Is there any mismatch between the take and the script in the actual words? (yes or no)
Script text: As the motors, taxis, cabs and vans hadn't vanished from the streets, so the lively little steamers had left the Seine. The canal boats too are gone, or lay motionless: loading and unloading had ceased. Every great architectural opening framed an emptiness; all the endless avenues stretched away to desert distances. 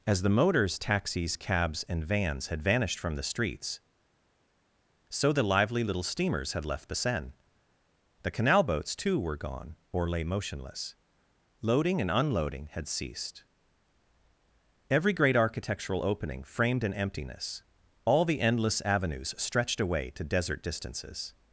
yes